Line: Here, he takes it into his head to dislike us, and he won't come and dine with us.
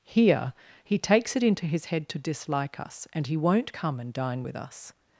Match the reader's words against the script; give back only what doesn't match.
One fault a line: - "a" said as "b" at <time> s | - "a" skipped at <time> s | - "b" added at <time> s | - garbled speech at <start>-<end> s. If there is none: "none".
none